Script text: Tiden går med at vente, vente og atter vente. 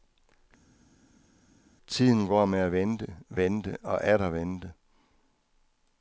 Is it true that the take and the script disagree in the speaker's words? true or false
false